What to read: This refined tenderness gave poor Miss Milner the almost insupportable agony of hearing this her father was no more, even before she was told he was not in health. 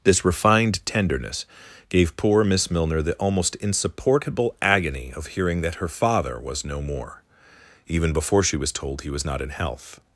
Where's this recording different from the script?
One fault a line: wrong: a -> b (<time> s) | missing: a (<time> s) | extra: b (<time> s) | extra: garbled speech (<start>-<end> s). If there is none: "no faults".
wrong: this -> that (5.6 s)